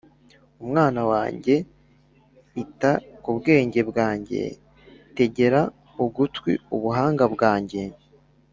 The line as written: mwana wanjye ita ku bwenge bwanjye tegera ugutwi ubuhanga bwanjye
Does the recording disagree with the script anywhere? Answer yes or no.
no